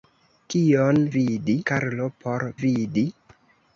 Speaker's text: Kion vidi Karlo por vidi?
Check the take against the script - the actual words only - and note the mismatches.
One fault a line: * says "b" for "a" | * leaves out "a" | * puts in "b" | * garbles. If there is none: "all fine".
all fine